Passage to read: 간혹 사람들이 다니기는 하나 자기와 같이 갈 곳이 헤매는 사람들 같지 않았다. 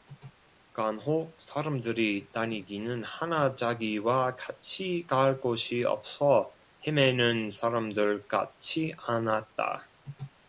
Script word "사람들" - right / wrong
right